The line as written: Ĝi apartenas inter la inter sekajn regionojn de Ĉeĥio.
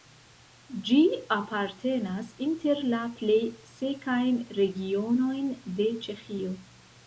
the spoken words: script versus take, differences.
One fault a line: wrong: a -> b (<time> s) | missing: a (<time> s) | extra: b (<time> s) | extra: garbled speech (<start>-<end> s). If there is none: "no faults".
wrong: inter -> plej (3.2 s)